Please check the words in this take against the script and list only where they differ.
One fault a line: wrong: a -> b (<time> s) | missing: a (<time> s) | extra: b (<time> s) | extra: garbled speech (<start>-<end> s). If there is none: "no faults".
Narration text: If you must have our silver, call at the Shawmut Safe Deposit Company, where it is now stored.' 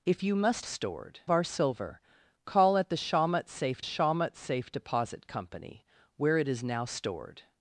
wrong: have -> stored (0.6 s)
extra: Shawmut Safe (3.8 s)